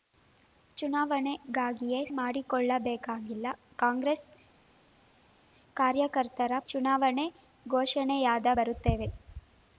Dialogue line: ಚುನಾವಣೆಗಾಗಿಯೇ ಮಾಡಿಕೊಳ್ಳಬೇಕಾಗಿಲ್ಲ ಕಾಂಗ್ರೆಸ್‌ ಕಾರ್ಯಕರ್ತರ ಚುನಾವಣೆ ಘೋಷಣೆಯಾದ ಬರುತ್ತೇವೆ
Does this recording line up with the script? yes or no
yes